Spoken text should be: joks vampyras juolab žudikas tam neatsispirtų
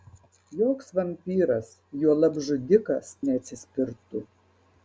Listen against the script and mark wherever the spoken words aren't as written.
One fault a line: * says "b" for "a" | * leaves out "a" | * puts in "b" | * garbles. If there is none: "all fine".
* leaves out "tam"